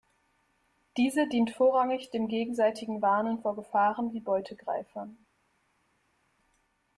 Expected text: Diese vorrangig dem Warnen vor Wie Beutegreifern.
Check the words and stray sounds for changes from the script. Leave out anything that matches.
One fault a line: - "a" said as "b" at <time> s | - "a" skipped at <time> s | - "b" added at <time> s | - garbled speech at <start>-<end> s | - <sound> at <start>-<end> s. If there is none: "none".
- "dient" added at 1.3 s
- "gegenseitigen" added at 2.3 s
- "Gefahren" added at 3.5 s